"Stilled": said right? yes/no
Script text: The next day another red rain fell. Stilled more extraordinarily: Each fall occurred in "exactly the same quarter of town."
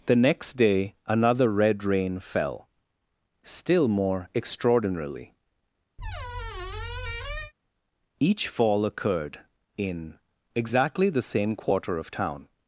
no